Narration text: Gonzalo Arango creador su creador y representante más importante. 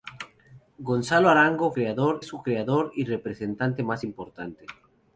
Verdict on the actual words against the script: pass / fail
pass